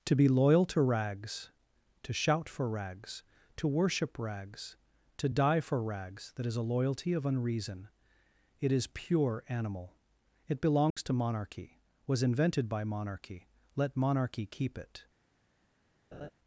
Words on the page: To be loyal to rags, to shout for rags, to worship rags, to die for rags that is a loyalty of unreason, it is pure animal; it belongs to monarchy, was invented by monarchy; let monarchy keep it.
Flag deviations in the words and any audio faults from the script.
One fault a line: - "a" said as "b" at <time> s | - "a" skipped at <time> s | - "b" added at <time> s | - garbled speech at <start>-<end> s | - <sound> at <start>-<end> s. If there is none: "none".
- dropout at 10.9-11.0 s
- laugh at 16.1-16.3 s